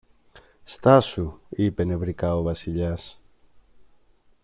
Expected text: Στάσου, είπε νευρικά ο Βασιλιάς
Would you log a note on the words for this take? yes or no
no